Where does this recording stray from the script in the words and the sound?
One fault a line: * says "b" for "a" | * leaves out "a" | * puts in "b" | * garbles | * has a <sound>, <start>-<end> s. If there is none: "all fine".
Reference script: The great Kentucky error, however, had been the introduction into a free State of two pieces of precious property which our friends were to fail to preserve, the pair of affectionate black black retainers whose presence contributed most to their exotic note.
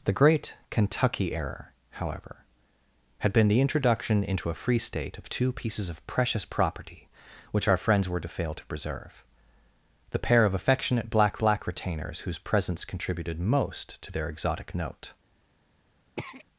* has a throat clearing, 16.2-16.5 s